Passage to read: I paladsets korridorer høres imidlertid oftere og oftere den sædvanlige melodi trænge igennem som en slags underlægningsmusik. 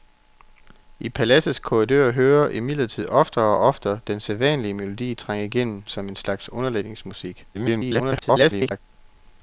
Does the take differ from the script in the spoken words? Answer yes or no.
yes